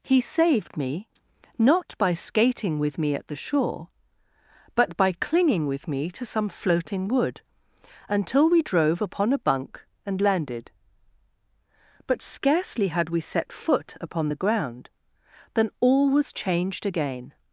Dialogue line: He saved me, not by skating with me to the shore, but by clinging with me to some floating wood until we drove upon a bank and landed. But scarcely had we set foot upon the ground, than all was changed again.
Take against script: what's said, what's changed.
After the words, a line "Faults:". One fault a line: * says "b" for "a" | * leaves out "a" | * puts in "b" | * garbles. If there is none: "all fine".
He saved me, not by skating with me at the shore, but by clinging with me to some floating wood until we drove upon a bunk and landed. But scarcely had we set foot upon the ground, than all was changed again.
Faults:
* says "at" for "to"
* says "bunk" for "bank"